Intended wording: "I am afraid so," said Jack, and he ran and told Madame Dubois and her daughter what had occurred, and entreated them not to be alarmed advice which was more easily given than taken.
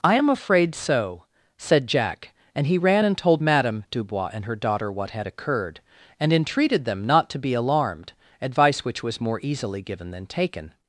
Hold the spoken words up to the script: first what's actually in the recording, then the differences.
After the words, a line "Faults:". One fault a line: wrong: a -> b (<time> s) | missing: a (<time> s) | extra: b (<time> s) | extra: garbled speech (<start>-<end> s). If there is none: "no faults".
"I am afraid so," said Jack, and he ran and told Madame Dubois and her daughter what had occurred, and entreated them not to be alarmed advice which was more easily given than taken.
Faults:
no faults